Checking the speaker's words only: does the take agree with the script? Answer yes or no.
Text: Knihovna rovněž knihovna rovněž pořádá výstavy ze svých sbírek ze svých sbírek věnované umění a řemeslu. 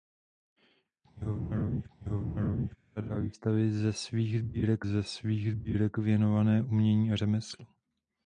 yes